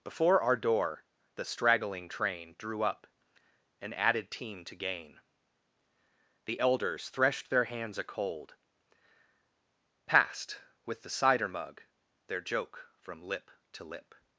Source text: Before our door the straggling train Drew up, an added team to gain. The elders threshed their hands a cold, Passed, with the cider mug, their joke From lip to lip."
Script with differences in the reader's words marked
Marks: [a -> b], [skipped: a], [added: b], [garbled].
Before our door the straggling train Drew up, an added team to gain. The elders threshed their hands a cold, Passed, with the cider mug, their joke From lip to lip."